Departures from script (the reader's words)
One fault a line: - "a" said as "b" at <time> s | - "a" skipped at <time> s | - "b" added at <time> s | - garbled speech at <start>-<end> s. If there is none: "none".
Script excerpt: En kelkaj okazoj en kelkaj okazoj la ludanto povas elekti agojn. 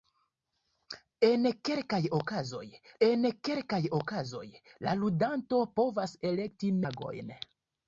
none